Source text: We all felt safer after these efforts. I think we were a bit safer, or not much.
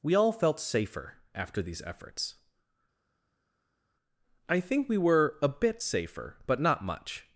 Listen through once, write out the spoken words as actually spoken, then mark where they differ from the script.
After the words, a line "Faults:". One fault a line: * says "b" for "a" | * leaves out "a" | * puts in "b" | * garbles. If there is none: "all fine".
We all felt safer after these efforts. I think we were a bit safer, but not much.
Faults:
* says "but" for "or"